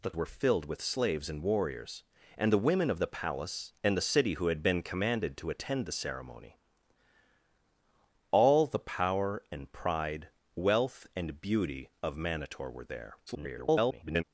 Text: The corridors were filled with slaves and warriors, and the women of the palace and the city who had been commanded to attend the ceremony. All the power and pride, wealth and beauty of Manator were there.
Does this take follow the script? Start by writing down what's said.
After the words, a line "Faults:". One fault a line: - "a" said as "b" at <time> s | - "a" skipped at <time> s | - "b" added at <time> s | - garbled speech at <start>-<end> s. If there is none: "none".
The were filled with slaves and warriors, and the women of the palace and the city who had been commanded to attend the ceremony. All the power and pride, wealth and beauty of Manator were there. [garbled]
Faults:
- "corridors" skipped at 0.1 s
- garbled speech at 13.3-14.2 s